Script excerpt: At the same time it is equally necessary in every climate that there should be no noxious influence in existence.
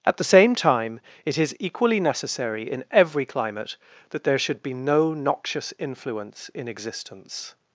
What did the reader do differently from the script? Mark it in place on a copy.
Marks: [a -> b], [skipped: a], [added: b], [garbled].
At the same time it is equally necessary in every climate that there should be no noxious influence in existence.